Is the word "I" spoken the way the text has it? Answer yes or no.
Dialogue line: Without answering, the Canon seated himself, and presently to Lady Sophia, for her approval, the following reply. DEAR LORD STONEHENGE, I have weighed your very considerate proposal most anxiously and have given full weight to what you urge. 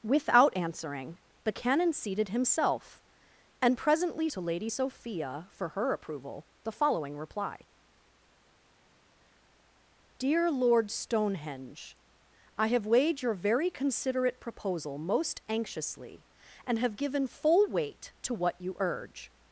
yes